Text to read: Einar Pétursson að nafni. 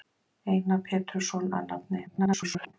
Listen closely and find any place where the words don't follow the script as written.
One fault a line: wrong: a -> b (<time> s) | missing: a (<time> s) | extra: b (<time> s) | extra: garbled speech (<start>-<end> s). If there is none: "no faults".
extra: garbled speech (2.1-2.7 s)